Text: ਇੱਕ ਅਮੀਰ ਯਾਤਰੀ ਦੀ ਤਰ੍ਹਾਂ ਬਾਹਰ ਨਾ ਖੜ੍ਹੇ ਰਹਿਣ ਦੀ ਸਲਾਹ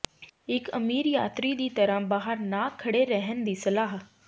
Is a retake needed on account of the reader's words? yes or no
no